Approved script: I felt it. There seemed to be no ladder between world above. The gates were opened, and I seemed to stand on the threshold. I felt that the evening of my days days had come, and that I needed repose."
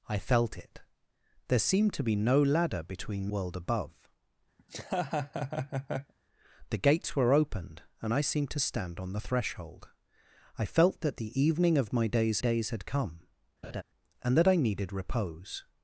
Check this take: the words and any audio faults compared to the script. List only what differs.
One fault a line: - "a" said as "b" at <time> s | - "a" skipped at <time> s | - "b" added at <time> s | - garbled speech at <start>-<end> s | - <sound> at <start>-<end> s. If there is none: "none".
- laugh at 4.6-6.1 s
- laugh at 13.6-13.8 s